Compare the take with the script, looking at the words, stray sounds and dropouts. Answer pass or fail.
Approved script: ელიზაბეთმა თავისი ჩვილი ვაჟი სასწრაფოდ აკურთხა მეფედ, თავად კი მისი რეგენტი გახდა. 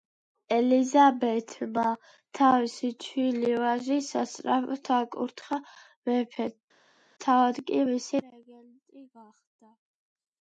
pass